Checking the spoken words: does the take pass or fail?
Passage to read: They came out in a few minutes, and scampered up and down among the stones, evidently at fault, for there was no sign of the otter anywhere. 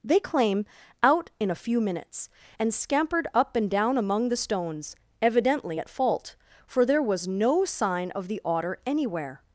fail